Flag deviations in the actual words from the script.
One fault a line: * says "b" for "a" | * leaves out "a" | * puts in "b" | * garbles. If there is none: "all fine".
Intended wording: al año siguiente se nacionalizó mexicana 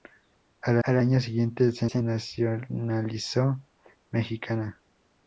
* puts in "al"
* puts in "se"